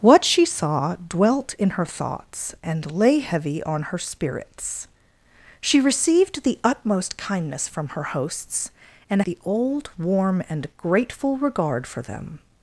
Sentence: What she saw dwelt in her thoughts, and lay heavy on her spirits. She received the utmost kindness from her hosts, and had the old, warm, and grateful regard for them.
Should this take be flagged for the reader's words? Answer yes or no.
yes